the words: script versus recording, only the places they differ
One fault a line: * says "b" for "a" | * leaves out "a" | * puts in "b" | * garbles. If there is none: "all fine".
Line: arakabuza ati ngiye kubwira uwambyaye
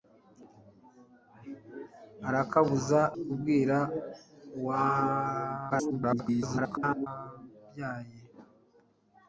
* leaves out "ati ngiye"
* garbles